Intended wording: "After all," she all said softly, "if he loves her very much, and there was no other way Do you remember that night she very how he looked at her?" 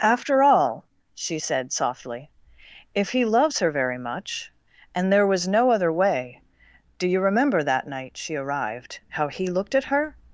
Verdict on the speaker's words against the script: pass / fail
fail